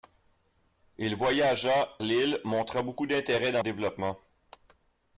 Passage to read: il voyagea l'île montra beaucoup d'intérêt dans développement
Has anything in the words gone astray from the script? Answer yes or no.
no